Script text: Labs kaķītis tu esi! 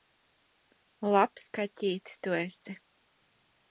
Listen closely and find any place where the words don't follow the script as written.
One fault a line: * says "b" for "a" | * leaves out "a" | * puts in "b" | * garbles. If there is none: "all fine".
all fine